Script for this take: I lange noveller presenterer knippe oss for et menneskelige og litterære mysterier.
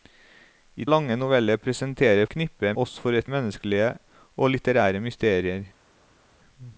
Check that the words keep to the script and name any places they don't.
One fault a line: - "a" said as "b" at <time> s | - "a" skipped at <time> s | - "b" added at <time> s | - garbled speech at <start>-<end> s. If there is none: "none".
none